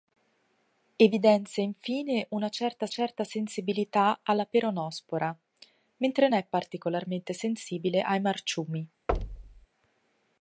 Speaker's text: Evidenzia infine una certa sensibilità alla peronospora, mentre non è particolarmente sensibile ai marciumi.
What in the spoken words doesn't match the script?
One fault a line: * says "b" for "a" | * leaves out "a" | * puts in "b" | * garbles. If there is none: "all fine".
* puts in "certa"
* leaves out "non"